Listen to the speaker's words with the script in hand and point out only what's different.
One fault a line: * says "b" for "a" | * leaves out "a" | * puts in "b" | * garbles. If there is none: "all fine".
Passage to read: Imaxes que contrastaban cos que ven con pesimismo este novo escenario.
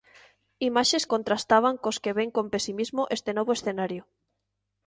* leaves out "que"